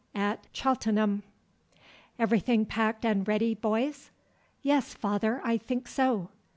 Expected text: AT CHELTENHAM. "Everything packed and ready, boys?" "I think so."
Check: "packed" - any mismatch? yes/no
no